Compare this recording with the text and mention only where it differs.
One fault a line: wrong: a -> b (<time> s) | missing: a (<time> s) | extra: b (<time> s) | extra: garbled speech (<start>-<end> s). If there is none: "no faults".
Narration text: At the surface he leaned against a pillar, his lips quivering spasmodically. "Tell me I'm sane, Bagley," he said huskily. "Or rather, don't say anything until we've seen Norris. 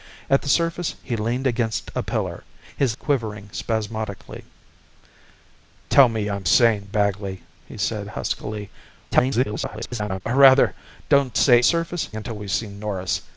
missing: lips (3.0 s)
extra: garbled speech (9.1-10.2 s)
wrong: anything -> surface (11.6 s)